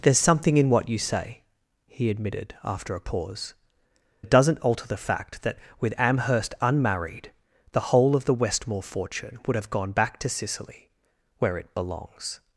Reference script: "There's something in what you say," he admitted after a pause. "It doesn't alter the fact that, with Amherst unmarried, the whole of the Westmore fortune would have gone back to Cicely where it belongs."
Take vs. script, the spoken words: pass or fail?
pass